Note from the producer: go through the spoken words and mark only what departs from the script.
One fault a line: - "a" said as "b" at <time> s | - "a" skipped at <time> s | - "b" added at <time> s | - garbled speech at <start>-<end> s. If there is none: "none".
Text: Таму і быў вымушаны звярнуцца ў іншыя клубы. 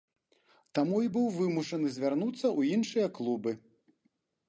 none